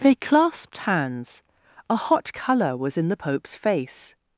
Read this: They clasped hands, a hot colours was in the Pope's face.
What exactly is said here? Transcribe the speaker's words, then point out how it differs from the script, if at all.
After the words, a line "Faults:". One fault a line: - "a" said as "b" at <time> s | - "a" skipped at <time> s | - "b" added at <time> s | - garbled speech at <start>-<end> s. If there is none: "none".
They clasped hands, a hot colour was in the Pope's face.
Faults:
- "colours" said as "colour" at 2.3 s